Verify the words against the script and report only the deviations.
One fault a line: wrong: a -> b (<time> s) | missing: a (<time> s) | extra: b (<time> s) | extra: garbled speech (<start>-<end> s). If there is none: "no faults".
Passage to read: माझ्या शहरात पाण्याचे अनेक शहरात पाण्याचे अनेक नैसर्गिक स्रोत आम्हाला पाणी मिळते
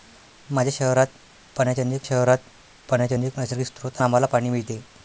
no faults